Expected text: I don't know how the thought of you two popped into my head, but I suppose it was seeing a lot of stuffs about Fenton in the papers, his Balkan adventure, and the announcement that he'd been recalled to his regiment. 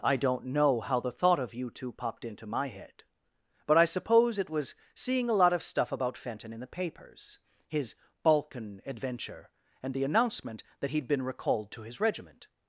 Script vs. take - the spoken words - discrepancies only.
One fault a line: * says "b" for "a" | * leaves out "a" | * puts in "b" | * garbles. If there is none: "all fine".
* says "stuff" for "stuffs"